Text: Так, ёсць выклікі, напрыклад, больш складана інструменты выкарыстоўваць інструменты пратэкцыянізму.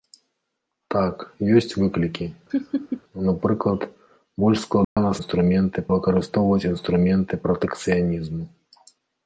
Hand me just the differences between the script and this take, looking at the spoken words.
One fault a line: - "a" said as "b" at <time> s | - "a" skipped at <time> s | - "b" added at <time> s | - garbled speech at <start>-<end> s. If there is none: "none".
none